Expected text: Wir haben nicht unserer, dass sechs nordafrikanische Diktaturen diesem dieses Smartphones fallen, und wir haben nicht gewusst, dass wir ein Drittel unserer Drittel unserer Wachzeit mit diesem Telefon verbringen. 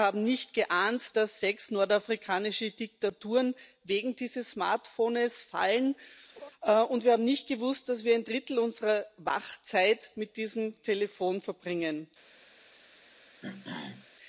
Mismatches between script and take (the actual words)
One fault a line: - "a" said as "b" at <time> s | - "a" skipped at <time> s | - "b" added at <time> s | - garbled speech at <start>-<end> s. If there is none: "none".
- "unserer" said as "geahnt" at 0.6 s
- "diesem" said as "wegen" at 3.8 s
- "Drittel unserer" skipped at 9.0 s